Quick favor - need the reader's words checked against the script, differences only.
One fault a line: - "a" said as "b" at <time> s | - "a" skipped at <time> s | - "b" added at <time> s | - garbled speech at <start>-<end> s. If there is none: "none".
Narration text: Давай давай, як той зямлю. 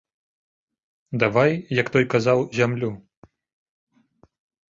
- "давай" skipped at 1.5 s
- "казаў" added at 2.1 s